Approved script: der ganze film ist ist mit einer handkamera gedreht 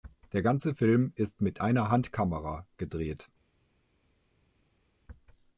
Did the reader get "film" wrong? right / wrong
right